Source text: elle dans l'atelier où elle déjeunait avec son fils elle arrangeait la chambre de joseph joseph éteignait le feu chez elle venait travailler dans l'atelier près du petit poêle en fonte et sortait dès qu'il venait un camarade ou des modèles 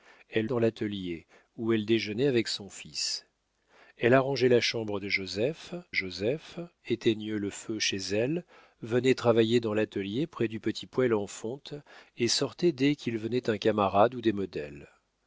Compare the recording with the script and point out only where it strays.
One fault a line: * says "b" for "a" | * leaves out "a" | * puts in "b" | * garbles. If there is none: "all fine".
all fine